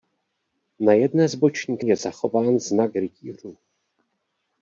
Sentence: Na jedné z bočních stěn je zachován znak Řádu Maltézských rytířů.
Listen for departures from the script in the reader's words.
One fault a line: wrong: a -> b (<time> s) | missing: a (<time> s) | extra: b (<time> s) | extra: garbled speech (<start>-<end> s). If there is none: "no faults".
missing: stěn (1.9 s)
missing: Řádu Maltézských (2.9 s)